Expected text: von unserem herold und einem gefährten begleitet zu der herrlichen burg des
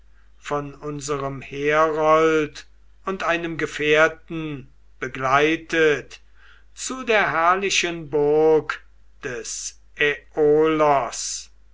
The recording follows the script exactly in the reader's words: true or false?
true